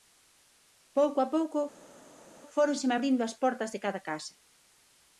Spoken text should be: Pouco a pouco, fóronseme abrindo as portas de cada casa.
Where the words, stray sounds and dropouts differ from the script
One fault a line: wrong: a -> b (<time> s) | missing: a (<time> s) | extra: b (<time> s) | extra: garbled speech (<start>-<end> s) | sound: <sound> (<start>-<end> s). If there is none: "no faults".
no faults